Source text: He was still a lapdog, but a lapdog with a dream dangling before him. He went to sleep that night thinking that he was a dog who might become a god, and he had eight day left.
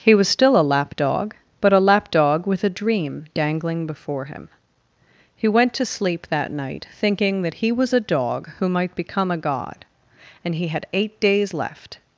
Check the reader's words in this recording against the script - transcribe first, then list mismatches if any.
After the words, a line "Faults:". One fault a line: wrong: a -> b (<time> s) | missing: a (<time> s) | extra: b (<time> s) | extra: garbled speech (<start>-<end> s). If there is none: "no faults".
He was still a lapdog, but a lapdog with a dream dangling before him. He went to sleep that night thinking that he was a dog who might become a god, and he had eight days left.
Faults:
wrong: day -> days (11.2 s)